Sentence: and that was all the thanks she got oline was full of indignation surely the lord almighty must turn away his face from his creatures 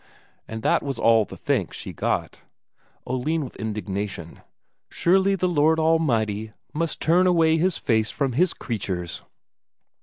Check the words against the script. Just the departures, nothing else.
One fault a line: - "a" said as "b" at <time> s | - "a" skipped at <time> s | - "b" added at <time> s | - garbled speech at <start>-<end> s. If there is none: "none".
- "was full" skipped at 3.5 s